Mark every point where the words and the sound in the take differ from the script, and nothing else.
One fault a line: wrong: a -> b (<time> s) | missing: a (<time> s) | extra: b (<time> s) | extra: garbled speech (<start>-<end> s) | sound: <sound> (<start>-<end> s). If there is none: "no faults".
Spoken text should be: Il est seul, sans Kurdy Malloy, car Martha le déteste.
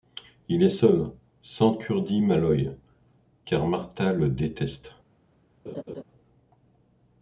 sound: laugh (5.7-6.0 s)